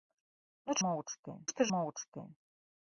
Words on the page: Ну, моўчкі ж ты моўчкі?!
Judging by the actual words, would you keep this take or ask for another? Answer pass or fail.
pass